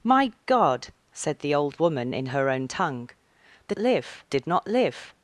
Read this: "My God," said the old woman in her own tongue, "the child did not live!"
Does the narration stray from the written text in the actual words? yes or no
yes